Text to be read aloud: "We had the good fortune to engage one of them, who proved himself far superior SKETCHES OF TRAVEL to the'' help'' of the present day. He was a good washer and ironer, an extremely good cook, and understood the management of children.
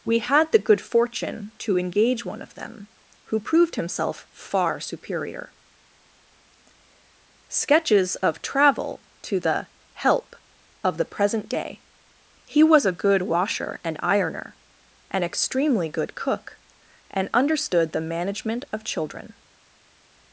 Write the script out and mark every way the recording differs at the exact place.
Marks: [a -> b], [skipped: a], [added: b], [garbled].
"We had the good fortune to engage one of them, who proved himself far superior SKETCHES OF TRAVEL to the'' help'' of the present day. He was a good washer and ironer, an extremely good cook, and understood the management of children.